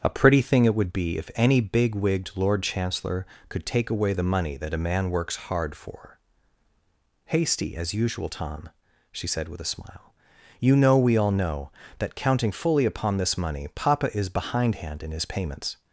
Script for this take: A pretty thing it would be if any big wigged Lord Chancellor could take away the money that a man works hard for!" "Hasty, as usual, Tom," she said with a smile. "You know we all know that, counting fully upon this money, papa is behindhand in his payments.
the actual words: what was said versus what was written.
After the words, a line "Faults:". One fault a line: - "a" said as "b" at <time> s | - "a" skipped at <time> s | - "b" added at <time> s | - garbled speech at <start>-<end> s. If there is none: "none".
A pretty thing it would be if any big wigged Lord Chancellor could take away the money that a man works hard for!" "Hasty, as usual, Tom," she said with a smile. "You know we all know that, counting fully upon this money, papa is behindhand in his payments.
Faults:
none